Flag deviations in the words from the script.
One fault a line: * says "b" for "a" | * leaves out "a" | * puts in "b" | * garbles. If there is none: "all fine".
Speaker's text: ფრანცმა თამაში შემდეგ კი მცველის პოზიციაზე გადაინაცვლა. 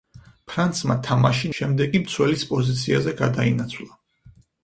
all fine